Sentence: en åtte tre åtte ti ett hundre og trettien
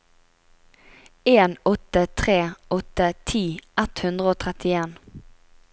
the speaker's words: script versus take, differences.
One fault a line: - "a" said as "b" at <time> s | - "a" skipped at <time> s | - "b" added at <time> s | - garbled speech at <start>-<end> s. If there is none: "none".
none